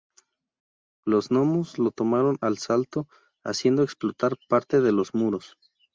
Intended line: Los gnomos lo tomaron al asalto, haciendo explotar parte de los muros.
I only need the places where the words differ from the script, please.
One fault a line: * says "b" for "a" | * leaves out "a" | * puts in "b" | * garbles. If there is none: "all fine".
all fine